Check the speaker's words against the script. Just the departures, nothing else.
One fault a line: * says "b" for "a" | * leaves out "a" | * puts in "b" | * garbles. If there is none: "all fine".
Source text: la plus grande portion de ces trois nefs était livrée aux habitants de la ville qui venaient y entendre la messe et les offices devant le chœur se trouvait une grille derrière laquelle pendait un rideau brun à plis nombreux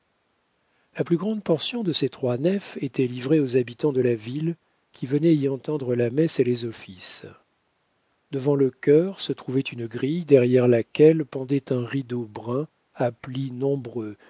all fine